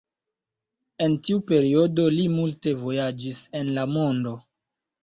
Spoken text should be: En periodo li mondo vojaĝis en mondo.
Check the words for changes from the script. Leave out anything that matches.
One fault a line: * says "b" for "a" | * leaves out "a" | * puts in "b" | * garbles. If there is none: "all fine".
* puts in "tiu"
* says "multe" for "mondo"
* puts in "la"